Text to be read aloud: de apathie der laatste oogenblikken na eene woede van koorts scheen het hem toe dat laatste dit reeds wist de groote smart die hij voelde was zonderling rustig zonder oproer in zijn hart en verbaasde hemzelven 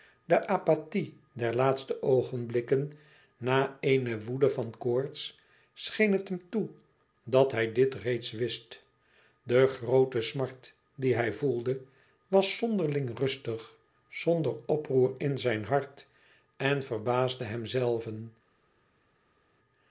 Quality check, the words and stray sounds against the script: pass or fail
fail